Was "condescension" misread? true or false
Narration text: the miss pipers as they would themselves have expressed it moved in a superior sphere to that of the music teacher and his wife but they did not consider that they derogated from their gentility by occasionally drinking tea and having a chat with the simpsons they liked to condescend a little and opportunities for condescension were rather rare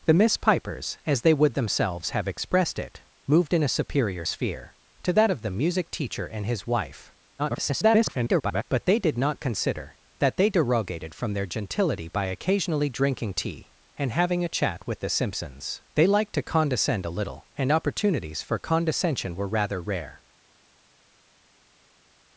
false